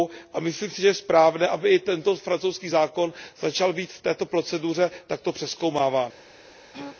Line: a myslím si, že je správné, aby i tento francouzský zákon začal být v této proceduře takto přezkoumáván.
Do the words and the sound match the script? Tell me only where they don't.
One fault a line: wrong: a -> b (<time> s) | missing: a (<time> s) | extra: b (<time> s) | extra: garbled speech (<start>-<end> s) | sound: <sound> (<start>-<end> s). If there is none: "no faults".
sound: throat clearing (6.7-7.0 s)